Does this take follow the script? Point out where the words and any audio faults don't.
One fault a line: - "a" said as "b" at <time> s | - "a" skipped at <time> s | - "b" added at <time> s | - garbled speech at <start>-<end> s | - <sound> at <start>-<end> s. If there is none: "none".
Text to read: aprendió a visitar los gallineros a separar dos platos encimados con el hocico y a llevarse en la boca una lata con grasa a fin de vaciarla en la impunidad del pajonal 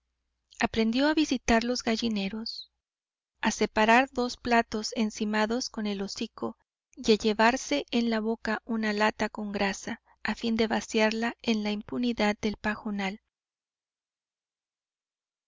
none